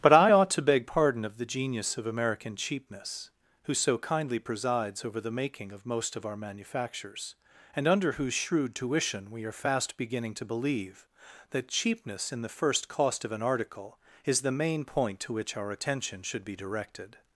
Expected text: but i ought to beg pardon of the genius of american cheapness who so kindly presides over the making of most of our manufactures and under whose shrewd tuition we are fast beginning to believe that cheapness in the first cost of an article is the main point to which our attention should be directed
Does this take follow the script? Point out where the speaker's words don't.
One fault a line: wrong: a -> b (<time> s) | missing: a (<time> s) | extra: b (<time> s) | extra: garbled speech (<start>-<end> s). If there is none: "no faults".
no faults